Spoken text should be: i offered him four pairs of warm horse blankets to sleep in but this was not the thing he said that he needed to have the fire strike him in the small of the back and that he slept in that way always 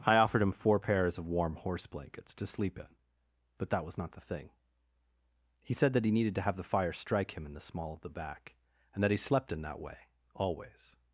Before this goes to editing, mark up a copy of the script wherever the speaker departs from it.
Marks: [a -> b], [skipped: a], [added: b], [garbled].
i offered him four pairs of warm horse blankets to sleep in but [this -> that] was not the thing he said that he needed to have the fire strike him in the small of the back and that he slept in that way always